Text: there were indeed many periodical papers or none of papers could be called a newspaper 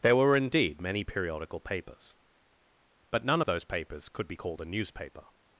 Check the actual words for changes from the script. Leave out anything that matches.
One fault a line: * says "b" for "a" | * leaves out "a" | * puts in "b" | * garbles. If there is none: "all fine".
* says "but" for "or"
* puts in "those"